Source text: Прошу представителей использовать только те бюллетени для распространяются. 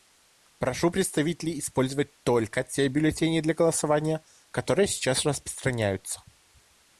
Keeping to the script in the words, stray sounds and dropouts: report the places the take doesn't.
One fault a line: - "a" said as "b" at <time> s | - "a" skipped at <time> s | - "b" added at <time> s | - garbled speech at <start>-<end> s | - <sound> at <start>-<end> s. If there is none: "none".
- "голосования которые сейчас" added at 3.5 s